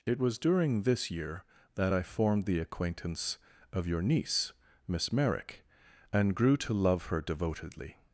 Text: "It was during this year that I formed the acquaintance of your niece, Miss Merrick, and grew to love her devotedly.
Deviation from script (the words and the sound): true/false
false